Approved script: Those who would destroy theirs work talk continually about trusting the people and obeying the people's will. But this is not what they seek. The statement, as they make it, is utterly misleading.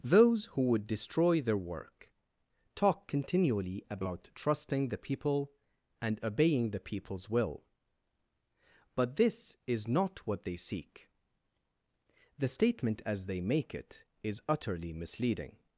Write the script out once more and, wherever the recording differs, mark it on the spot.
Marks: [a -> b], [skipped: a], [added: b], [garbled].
Those who would destroy [theirs -> their] work talk continually about trusting the people and obeying the people's will. But this is not what they seek. The statement, as they make it, is utterly misleading.